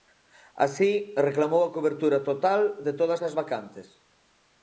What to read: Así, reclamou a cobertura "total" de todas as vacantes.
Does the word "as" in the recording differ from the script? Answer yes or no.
no